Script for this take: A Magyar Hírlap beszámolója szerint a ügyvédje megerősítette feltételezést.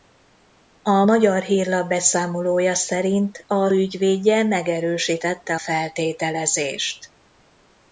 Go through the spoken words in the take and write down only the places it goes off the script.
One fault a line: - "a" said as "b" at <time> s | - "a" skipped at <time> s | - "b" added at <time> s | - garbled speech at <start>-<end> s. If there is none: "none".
none